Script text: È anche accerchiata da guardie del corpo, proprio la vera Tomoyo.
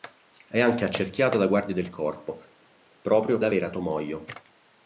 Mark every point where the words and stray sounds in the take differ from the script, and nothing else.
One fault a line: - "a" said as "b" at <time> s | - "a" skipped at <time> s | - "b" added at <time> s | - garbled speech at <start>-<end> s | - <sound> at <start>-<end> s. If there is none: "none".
none